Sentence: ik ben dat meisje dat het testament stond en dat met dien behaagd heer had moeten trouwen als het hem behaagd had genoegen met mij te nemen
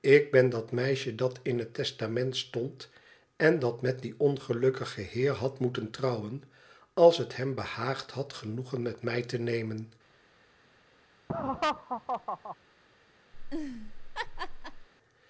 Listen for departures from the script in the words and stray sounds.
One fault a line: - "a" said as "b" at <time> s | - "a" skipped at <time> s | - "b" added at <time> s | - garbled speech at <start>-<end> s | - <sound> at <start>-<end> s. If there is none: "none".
- "in" added at 1.4 s
- "behaagd" said as "ongelukkigen" at 4.2 s
- laugh at 11.3-12.6 s
- laugh at 13.3-14.9 s